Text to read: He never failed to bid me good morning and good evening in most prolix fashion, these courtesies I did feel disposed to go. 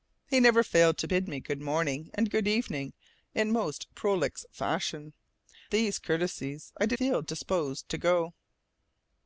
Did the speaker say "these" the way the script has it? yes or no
yes